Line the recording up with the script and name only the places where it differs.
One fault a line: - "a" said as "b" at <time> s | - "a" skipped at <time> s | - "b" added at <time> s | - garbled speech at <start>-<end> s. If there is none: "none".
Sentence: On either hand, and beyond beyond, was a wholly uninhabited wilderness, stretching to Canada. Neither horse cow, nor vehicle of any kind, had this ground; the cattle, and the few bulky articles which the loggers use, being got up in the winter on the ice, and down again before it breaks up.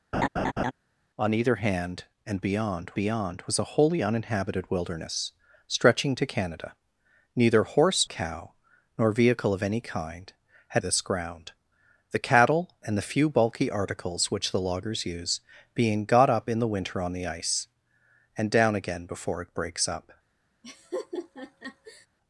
none